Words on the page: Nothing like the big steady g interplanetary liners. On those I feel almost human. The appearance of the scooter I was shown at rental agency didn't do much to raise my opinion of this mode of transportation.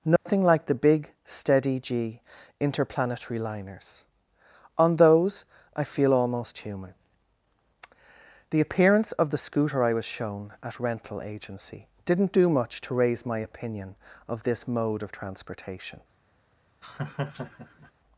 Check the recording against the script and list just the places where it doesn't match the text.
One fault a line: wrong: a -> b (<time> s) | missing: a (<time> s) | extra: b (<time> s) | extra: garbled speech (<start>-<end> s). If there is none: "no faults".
no faults